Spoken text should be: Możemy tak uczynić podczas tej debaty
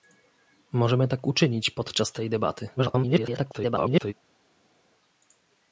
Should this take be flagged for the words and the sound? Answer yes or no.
yes